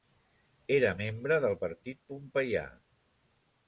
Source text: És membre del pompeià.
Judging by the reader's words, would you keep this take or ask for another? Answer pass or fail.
fail